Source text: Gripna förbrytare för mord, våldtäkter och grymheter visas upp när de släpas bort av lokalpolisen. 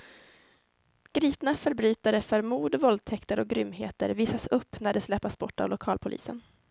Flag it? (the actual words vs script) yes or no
no